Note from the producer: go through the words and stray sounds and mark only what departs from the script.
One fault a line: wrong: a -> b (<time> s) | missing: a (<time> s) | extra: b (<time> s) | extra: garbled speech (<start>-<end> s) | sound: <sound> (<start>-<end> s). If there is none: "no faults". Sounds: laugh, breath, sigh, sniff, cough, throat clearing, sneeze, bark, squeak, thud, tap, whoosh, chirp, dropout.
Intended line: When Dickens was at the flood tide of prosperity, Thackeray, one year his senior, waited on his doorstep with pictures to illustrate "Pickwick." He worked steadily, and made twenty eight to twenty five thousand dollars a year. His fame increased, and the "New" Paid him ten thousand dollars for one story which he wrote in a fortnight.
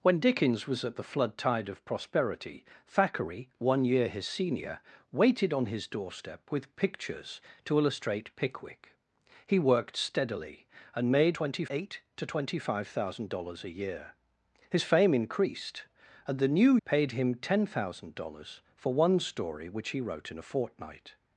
no faults